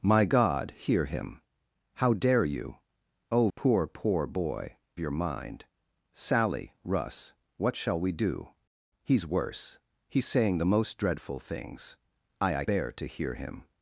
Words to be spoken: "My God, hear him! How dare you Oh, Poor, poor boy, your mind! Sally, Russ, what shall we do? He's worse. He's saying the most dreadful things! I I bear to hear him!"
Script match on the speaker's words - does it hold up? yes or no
yes